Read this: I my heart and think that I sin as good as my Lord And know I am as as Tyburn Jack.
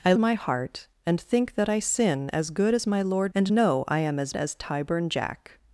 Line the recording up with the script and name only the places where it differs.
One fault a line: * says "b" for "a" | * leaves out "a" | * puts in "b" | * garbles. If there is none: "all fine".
all fine